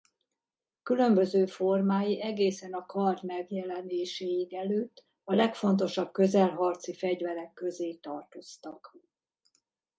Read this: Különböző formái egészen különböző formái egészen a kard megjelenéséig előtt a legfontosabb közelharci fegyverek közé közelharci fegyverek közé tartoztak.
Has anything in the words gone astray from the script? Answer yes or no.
yes